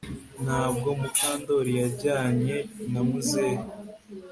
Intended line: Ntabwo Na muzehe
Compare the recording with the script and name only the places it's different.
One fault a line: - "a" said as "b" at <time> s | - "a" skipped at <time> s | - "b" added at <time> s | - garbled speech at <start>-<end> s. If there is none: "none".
- "Mukandoli yajyanye" added at 1.0 s